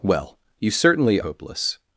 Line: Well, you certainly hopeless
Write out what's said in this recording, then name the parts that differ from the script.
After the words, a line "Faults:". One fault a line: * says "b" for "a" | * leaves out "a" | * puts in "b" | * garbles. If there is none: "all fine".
Well, you certainly hopeless
Faults:
all fine